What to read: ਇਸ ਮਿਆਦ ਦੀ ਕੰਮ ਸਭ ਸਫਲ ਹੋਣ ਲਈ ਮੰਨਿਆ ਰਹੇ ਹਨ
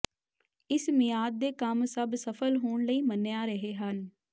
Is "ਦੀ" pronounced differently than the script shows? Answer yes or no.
yes